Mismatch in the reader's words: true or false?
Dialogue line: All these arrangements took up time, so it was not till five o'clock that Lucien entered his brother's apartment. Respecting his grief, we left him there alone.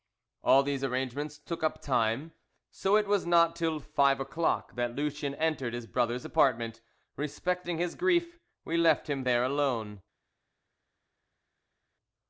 false